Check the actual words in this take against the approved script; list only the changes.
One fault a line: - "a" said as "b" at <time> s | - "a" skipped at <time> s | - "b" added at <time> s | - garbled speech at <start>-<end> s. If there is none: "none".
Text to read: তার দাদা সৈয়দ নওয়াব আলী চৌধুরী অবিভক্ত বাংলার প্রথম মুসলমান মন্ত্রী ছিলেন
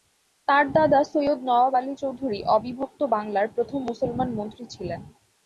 none